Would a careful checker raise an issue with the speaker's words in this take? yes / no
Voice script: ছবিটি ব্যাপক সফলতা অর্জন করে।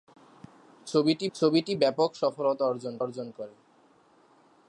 yes